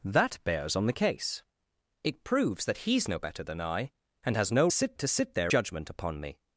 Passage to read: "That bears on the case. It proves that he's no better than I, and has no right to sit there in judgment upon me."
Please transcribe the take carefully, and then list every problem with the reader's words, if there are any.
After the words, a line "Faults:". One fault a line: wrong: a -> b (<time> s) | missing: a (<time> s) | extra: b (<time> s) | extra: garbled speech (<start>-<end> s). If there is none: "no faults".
"That bears on the case. It proves that he's no better than I, and has no sit to sit there judgment upon me."
Faults:
wrong: right -> sit (4.7 s)
missing: in (5.5 s)